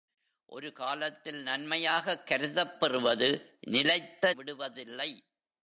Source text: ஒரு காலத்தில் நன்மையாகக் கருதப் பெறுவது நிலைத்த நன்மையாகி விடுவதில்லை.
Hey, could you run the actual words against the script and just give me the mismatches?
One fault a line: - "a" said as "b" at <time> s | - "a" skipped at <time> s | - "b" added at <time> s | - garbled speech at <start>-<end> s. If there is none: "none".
- "நன்மையாகி" skipped at 4.3 s